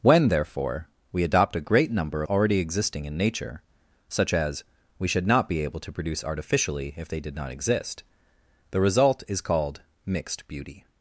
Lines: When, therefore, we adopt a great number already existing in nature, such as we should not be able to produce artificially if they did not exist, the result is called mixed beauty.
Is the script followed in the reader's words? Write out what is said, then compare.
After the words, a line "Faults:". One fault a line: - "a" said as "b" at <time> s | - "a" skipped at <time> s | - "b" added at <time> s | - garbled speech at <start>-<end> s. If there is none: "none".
When, therefore, we adopt a great number already existing in nature, such as we should not be able to produce artificially if they did not exist, the result is called mixed beauty.
Faults:
none